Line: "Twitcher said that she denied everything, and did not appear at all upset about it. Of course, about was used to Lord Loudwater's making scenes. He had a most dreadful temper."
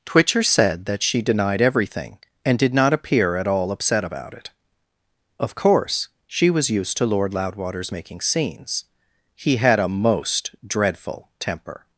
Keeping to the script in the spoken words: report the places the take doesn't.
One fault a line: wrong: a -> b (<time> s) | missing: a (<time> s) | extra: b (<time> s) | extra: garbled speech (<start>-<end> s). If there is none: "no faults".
wrong: about -> she (6.3 s)